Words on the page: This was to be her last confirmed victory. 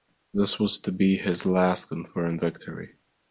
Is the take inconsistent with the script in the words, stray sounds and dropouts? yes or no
yes